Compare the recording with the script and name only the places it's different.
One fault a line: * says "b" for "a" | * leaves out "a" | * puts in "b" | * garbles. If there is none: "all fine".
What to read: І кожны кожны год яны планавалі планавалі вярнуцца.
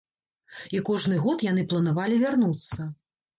* leaves out "кожны"
* leaves out "планавалі"